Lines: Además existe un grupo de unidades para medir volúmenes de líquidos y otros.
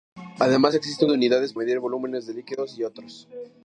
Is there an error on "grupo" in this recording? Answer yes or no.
yes